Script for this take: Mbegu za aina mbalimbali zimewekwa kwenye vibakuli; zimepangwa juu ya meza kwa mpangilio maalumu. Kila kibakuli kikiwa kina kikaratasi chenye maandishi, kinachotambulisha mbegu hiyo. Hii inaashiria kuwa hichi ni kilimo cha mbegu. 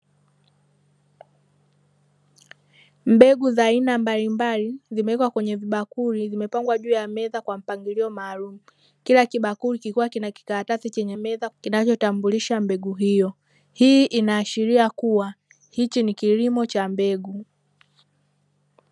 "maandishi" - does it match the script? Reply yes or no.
no